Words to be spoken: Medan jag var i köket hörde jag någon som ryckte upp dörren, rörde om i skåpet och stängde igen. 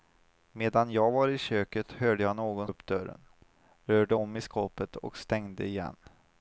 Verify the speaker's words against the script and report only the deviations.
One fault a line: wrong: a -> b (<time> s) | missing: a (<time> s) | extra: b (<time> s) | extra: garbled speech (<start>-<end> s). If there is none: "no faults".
missing: som ryckte (2.7 s)